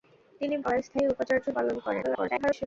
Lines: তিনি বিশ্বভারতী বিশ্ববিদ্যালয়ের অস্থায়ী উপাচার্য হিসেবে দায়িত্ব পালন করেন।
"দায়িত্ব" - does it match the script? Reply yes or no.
no